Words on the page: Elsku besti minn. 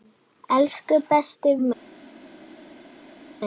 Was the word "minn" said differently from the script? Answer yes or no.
no